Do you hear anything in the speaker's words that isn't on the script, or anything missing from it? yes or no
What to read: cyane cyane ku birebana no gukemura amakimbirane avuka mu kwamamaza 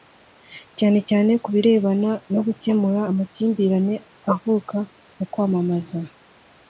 no